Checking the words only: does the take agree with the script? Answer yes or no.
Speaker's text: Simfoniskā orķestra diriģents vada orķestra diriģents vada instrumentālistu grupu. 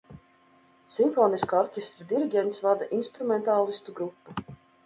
no